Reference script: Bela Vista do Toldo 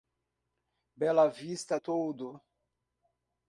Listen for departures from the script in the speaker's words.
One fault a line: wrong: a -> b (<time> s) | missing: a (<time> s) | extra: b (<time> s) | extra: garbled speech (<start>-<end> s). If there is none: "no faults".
missing: do (1.8 s)